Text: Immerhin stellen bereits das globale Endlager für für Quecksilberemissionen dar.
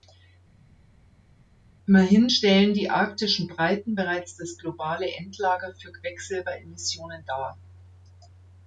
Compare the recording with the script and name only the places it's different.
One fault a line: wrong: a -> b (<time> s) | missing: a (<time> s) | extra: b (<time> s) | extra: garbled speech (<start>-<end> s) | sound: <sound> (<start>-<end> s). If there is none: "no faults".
extra: die arktischen Breiten (2.7 s)
missing: für (5.9 s)